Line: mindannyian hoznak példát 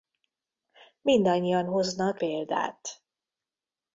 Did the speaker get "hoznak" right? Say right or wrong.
right